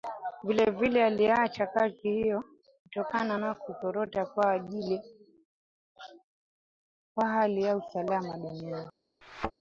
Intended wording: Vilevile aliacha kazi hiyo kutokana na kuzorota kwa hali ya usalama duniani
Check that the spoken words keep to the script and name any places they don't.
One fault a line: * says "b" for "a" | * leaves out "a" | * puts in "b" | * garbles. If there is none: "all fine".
all fine